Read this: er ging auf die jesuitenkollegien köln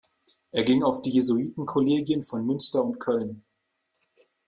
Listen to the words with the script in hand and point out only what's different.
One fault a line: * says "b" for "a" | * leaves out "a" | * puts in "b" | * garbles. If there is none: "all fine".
* puts in "von münster und"